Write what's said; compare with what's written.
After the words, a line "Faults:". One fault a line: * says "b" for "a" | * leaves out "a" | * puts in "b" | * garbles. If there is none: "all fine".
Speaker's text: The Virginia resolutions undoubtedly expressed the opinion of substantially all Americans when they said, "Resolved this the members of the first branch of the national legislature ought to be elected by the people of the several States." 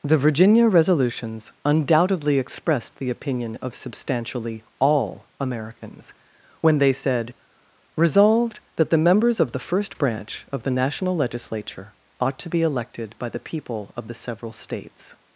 The Virginia resolutions undoubtedly expressed the opinion of substantially all Americans when they said, "Resolved that the members of the first branch of the national legislature ought to be elected by the people of the several States."
Faults:
* says "that" for "this"